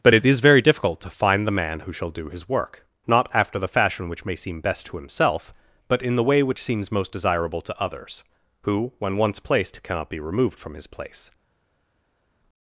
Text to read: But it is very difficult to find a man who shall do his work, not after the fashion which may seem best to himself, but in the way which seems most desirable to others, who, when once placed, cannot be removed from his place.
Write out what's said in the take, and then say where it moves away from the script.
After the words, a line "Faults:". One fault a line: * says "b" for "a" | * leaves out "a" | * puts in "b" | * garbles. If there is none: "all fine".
But it is very difficult to find the man who shall do his work, not after the fashion which may seem best to himself, but in the way which seems most desirable to others, who, when once placed, cannot be removed from his place.
Faults:
* says "the" for "a"